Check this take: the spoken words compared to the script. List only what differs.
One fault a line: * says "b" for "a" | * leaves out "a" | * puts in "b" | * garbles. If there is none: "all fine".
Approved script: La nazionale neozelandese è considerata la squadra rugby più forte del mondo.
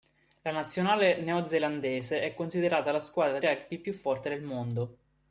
all fine